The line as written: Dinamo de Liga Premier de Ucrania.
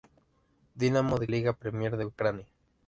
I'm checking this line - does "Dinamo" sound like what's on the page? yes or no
yes